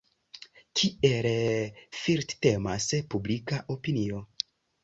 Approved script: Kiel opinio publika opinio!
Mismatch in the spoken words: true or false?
true